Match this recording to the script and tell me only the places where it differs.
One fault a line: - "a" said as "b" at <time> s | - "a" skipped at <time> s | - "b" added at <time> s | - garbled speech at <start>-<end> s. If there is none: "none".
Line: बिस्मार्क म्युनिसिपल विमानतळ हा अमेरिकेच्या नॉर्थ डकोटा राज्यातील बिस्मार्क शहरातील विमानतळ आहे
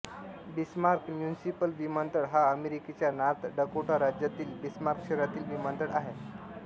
none